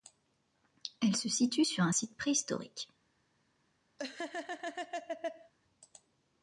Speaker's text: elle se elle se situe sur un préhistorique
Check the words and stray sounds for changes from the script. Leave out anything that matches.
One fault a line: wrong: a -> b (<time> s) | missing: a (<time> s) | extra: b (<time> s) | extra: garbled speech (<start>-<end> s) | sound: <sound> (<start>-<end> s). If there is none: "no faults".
missing: elle se (1.3 s)
extra: site (1.9 s)
sound: laugh (4.0-5.5 s)